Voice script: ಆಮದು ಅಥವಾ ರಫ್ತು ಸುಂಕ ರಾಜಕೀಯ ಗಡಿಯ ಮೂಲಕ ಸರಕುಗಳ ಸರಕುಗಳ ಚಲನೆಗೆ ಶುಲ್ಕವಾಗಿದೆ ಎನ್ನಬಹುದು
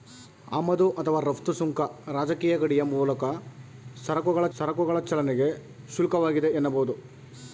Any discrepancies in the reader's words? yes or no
no